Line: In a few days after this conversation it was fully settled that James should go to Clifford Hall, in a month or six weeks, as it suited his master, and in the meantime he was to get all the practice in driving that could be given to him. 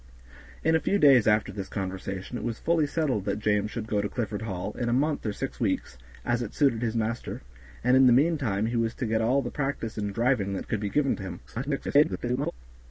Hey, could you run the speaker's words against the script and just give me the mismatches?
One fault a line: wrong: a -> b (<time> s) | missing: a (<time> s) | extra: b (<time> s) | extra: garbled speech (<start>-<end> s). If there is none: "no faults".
extra: garbled speech (11.5-12.5 s)